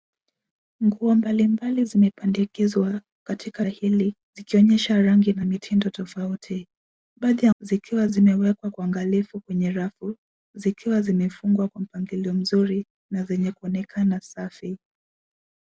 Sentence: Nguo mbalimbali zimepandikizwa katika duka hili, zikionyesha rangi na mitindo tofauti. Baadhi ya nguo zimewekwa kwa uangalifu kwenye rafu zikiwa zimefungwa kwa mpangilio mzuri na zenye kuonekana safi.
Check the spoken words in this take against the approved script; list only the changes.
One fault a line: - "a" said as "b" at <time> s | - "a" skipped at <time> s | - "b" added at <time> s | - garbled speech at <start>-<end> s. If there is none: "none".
- "duka" skipped at 3.6 s
- "nguo" said as "zikiwa" at 7.6 s